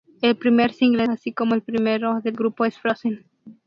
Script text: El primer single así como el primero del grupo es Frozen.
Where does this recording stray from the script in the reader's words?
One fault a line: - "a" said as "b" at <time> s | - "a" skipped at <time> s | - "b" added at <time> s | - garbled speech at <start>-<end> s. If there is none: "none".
none